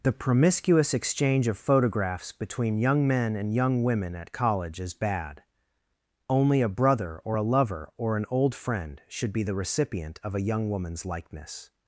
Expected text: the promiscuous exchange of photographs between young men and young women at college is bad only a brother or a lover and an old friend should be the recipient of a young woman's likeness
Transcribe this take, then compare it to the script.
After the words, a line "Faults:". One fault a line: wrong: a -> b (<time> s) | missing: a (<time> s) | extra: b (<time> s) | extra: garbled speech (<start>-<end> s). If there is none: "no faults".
the promiscuous exchange of photographs between young men and young women at college is bad only a brother or a lover or an old friend should be the recipient of a young woman's likeness
Faults:
wrong: and -> or (8.0 s)